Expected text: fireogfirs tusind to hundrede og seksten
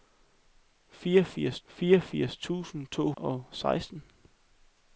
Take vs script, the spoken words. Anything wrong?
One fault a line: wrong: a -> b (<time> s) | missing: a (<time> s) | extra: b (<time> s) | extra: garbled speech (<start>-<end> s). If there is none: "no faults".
extra: fireogfirs (1.6 s)
missing: hundrede (3.1 s)